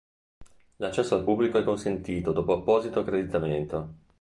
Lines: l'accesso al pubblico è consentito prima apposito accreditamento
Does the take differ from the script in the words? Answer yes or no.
yes